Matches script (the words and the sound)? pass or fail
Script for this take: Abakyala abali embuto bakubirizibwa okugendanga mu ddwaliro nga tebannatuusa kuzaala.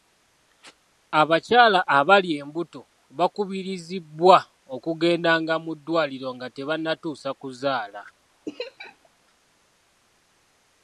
fail